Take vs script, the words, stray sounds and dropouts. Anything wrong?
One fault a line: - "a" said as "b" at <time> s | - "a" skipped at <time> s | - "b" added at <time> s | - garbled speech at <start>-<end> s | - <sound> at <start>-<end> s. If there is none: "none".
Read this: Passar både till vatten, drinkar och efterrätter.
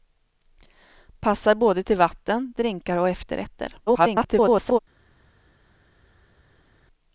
- garbled speech at 3.9-4.8 s